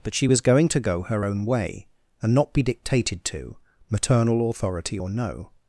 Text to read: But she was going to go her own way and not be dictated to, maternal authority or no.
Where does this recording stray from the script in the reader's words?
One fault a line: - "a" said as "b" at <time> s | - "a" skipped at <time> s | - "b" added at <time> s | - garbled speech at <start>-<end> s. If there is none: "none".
none